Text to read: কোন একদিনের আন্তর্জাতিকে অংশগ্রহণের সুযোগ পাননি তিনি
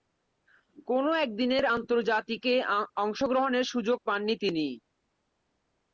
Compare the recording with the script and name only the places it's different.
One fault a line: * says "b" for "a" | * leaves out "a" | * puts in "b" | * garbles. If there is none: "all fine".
all fine